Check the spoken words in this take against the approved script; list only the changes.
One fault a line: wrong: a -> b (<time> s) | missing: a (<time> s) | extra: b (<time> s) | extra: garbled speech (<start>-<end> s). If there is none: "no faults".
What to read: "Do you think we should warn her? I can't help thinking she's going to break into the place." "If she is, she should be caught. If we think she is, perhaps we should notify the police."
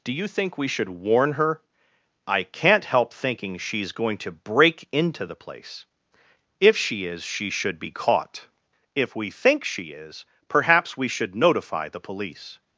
no faults